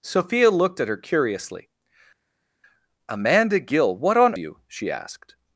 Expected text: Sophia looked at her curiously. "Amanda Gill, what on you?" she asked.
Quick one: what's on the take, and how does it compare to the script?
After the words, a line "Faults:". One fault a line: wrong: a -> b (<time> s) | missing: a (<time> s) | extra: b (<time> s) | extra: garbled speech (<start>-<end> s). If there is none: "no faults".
Sophia looked at her curiously. "Amanda Gill, what on you?" she asked.
Faults:
no faults